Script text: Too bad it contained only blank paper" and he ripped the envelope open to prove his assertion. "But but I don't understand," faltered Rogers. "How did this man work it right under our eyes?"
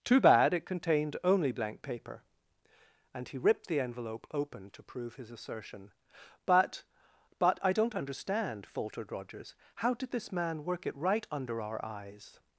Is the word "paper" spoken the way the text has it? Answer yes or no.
yes